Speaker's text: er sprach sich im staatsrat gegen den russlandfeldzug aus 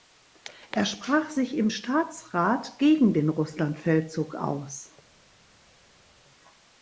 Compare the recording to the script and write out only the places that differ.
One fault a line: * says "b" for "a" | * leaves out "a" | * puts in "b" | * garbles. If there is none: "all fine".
all fine